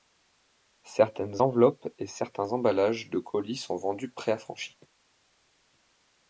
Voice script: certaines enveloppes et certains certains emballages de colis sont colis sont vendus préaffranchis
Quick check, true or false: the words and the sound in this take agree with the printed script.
false